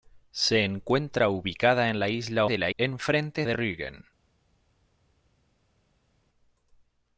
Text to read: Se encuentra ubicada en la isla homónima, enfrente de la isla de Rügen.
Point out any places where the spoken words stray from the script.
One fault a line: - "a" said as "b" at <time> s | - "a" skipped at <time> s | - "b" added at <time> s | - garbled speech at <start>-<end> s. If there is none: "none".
- "homónima enfrente" skipped at 2.5 s
- "isla" said as "enfrente" at 2.8 s